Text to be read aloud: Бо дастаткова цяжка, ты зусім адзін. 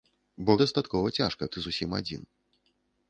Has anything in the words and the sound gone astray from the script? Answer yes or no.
no